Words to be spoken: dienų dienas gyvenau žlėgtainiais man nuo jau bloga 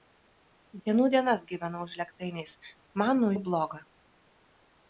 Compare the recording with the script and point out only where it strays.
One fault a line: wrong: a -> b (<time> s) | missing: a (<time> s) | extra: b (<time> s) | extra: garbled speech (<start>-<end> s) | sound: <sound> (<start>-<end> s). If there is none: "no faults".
no faults